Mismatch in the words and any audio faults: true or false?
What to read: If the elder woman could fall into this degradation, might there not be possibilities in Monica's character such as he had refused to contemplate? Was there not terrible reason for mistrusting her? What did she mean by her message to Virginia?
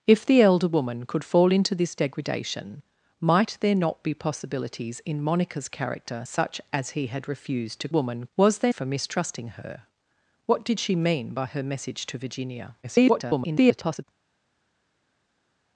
true